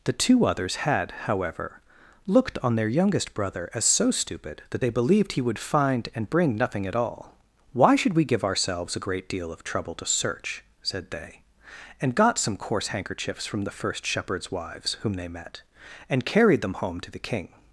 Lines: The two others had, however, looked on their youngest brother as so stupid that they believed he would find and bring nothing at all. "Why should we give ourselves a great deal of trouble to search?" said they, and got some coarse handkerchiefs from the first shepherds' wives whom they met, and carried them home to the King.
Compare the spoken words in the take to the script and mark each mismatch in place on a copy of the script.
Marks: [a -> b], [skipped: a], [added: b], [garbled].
The two others had, however, looked on their youngest brother as so stupid that they believed he would find and bring nothing at all. "Why should we give ourselves a great deal of trouble to search?" said they, and got some coarse handkerchiefs from the first shepherds' wives whom they met, and carried them home to the King.